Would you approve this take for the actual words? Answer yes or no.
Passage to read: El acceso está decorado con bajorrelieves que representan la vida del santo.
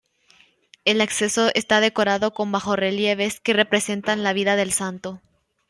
yes